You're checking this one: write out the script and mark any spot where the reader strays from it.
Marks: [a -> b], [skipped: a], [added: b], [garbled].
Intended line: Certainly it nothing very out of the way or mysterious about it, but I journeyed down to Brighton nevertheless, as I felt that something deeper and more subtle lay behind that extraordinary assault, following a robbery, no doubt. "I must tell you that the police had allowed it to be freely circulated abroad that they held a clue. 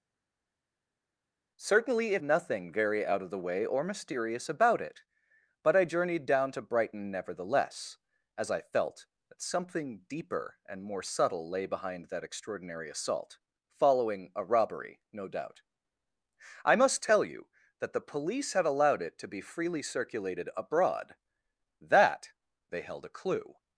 Certainly it nothing very out of the way or mysterious about it, but I journeyed down to Brighton nevertheless, as I felt that something deeper and more subtle lay behind that extraordinary assault, following a robbery, no doubt. "I must tell you that the police had allowed it to be freely circulated abroad that they held a clue.